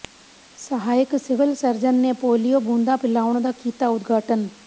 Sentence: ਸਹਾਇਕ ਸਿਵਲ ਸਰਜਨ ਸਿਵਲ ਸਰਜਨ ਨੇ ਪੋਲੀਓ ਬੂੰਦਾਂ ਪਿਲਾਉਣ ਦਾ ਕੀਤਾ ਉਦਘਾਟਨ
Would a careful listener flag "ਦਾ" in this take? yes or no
no